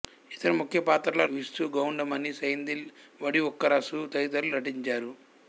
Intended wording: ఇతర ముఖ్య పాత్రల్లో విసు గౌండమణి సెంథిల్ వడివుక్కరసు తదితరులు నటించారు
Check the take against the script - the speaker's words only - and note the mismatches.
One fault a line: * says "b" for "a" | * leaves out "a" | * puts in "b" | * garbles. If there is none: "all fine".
all fine